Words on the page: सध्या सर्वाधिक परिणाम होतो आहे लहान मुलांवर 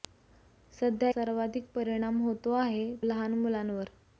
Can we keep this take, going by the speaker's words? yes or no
yes